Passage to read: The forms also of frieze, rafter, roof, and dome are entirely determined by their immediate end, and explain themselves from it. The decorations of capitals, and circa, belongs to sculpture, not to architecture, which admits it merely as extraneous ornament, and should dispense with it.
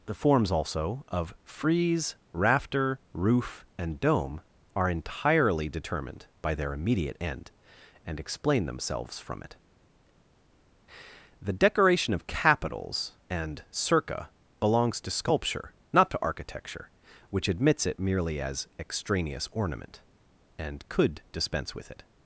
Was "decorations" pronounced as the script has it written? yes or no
no